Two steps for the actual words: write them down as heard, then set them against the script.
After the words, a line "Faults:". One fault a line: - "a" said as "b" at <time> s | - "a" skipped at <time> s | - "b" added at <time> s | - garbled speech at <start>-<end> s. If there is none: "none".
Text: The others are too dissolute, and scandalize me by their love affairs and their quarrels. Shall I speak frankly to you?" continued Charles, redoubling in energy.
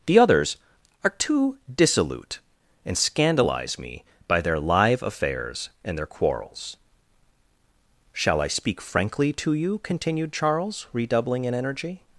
The others are too dissolute, and scandalize me by their live affairs and their quarrels. Shall I speak frankly to you?" continued Charles, redoubling in energy.
Faults:
- "love" said as "live" at 4.6 s